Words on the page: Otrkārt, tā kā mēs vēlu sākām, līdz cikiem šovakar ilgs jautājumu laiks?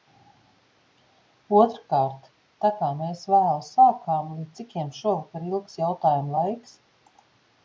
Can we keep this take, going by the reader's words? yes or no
yes